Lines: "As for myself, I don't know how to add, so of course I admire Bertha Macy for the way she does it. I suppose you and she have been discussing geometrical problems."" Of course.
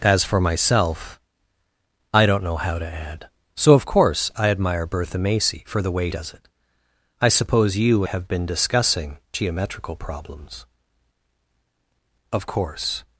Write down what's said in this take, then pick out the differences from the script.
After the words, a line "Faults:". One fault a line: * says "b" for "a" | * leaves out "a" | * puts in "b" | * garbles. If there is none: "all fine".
"As for myself, I don't know how to add, so of course I admire Bertha Macy for the way does it. I suppose you have been discussing geometrical problems."" Of course.
Faults:
* leaves out "she"
* leaves out "and she"